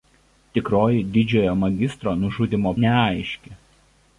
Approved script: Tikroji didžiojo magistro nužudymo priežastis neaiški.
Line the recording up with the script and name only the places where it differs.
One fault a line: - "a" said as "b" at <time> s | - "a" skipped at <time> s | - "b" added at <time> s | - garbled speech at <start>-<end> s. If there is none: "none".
- "priežastis" skipped at 2.8 s